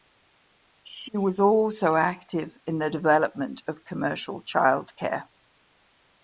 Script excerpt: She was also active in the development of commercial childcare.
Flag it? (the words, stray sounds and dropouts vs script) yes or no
no